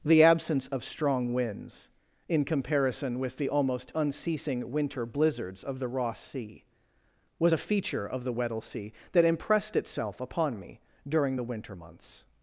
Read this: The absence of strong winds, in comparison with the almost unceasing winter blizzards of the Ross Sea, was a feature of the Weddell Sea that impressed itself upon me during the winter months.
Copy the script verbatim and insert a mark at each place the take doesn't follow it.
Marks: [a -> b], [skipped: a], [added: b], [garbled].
The absence of strong winds, in comparison with the almost unceasing winter blizzards of the Ross Sea, was a feature of the Weddell Sea that impressed itself upon me during the winter months.